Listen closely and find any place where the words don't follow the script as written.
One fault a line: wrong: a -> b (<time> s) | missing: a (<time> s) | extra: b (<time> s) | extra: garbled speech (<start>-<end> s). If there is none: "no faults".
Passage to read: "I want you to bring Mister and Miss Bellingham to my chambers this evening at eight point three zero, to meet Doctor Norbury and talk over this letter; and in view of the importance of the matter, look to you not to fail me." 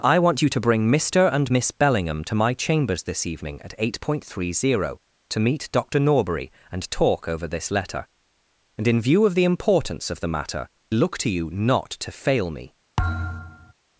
no faults